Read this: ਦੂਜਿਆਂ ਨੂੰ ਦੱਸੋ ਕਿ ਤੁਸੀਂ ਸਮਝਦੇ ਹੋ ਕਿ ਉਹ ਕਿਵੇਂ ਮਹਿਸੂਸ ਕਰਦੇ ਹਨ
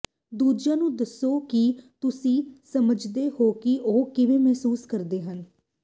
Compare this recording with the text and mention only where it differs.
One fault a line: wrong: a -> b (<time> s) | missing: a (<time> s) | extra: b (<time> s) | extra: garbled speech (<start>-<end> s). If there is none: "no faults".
no faults